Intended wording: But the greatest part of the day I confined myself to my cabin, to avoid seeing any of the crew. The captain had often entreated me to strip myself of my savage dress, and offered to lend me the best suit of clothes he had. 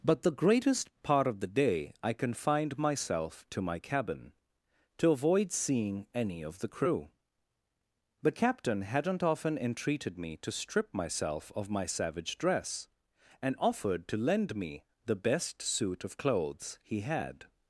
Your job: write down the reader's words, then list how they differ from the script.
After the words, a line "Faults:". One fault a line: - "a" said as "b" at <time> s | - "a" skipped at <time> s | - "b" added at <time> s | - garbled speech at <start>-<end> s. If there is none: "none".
But the greatest part of the day I confined myself to my cabin, to avoid seeing any of the crew. The captain hadn't often entreated me to strip myself of my savage dress, and offered to lend me the best suit of clothes he had.
Faults:
- "had" said as "hadn't" at 8.8 s